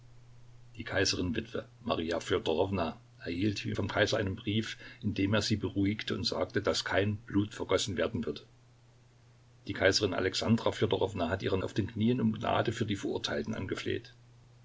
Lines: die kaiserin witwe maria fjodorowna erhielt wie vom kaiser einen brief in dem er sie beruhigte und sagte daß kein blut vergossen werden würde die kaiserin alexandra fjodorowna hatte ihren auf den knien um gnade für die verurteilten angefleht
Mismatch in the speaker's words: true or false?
false